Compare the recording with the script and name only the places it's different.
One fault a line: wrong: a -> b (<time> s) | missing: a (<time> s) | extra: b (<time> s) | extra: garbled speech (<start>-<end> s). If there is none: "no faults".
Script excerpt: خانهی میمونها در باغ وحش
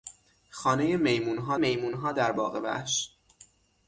extra: میمونها (1.5 s)